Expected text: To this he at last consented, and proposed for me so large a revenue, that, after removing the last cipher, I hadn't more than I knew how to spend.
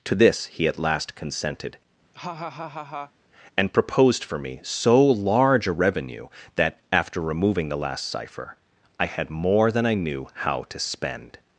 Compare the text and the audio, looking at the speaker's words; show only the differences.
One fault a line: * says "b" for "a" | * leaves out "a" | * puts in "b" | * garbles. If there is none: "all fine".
* says "had" for "hadn't"